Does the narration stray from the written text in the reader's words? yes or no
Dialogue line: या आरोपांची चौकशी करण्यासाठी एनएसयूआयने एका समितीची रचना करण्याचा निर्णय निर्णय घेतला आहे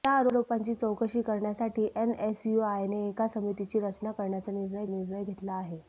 no